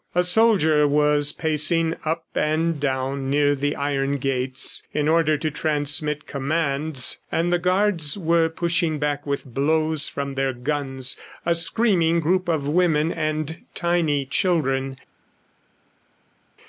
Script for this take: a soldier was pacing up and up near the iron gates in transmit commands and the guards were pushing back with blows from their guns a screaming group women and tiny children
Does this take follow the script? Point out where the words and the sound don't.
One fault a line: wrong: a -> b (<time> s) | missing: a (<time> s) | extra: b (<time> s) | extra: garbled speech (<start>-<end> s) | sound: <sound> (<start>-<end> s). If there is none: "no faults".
wrong: up -> down (2.8 s)
extra: order to (5.1 s)
extra: of (12.5 s)